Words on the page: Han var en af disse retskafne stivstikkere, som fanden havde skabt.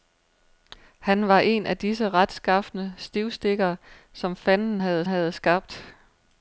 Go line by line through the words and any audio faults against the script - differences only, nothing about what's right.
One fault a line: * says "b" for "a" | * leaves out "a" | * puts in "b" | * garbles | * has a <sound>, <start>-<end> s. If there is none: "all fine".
* puts in "havde"